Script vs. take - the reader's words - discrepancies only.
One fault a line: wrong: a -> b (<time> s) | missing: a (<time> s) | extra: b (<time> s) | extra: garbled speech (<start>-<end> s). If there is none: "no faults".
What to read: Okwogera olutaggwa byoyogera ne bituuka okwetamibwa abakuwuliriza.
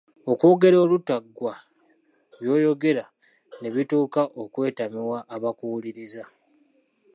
no faults